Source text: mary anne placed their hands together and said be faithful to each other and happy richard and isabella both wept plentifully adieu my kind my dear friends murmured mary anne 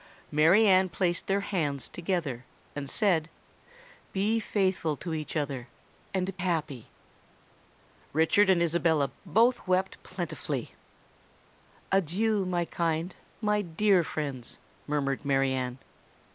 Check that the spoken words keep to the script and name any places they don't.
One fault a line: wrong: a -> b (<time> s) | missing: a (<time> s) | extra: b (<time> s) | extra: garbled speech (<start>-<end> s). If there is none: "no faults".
no faults